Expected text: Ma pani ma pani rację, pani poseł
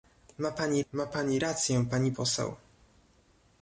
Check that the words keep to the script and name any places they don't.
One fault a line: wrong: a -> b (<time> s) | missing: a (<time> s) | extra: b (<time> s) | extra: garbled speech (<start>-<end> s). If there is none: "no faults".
no faults